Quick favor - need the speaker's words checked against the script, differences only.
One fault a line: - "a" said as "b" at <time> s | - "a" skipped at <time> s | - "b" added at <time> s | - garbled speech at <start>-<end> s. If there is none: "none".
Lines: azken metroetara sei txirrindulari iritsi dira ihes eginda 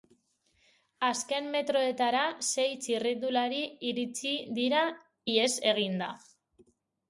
none